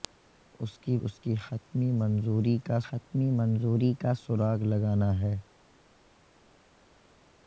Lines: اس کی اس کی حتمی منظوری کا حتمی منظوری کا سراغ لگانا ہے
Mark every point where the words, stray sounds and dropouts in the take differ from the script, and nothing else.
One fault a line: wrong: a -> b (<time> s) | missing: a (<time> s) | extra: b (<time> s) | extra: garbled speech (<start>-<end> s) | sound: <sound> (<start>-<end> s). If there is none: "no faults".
no faults